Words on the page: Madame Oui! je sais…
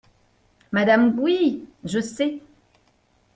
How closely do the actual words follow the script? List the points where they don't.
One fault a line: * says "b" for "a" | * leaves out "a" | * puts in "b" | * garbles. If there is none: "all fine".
all fine